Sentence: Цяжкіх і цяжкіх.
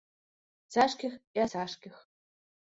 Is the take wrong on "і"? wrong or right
right